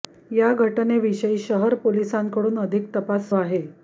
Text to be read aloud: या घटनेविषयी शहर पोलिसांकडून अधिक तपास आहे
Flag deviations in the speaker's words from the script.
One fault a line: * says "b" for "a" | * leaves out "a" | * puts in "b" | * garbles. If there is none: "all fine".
all fine